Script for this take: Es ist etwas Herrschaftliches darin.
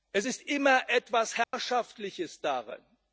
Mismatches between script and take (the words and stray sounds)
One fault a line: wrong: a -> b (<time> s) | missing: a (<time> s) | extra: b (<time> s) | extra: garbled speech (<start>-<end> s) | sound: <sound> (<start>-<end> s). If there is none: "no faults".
extra: immer (0.4 s)
sound: dropout (1.4-1.5 s)